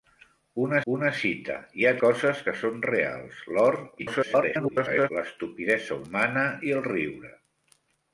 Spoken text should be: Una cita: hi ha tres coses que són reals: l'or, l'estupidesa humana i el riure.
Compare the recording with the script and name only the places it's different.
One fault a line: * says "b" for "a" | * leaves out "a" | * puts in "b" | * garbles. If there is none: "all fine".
* puts in "una"
* leaves out "tres"
* garbles